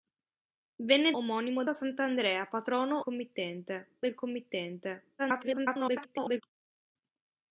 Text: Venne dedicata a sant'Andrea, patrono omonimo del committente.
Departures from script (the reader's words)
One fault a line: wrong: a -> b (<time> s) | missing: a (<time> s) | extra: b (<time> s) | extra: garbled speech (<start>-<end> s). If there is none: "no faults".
wrong: dedicata -> omonimo (1.2 s)
wrong: omonimo -> committente (3.0 s)
extra: garbled speech (5.2-6.4 s)